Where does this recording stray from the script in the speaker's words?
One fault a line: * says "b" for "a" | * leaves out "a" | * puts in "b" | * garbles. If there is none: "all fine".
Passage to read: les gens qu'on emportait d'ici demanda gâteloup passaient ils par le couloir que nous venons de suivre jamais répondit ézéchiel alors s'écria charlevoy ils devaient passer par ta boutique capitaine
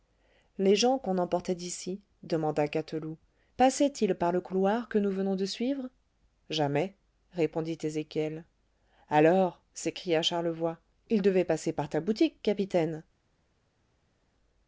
all fine